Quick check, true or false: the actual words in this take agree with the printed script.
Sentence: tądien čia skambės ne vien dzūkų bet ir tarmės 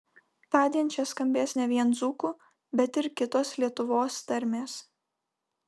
false